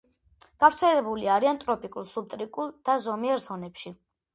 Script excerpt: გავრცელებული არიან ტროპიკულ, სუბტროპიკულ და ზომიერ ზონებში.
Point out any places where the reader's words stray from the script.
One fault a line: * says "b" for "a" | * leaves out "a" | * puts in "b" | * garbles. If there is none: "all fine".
all fine